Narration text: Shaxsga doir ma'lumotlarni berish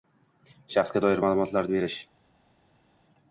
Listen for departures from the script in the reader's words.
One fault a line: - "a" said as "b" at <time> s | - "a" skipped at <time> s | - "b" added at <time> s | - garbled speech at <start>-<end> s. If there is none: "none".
none